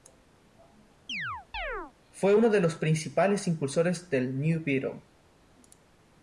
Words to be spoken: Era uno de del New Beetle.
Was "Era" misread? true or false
true